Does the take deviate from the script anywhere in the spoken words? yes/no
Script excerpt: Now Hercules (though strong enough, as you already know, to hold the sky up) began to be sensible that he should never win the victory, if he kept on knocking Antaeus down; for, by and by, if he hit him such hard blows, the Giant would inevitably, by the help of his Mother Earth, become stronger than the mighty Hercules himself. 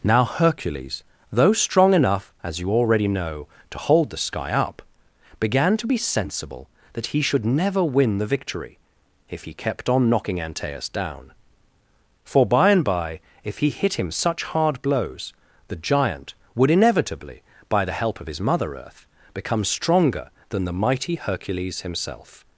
no